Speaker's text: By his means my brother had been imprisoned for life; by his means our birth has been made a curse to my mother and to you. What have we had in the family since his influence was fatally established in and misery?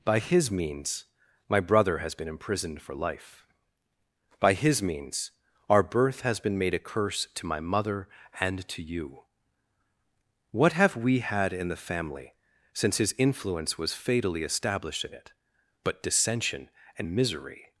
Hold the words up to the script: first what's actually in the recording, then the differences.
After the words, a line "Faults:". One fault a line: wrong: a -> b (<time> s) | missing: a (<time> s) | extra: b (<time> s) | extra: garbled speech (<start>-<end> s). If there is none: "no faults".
By his means my brother has been imprisoned for life; by his means our birth has been made a curse to my mother and to you. What have we had in the family since his influence was fatally established in it, but dissension and misery?
Faults:
wrong: had -> has (2.0 s)
extra: it but dissension (15.1 s)